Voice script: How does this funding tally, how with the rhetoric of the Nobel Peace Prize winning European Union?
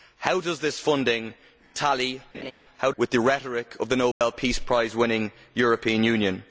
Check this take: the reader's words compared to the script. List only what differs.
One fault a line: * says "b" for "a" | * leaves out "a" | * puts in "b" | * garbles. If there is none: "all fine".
all fine